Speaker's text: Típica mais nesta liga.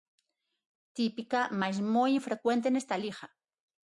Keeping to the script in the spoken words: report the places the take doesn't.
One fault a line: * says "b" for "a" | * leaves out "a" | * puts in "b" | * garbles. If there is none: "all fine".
* puts in "moi infrecuente"